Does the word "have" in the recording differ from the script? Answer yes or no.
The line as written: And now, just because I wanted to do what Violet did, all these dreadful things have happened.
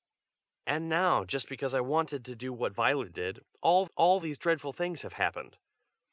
no